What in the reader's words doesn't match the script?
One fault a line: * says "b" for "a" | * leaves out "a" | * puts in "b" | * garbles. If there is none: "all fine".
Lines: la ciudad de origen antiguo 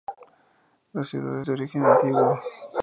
all fine